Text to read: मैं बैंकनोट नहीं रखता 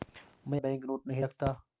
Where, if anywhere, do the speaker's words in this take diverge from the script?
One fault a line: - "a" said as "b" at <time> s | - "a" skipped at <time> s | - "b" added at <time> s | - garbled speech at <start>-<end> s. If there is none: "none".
none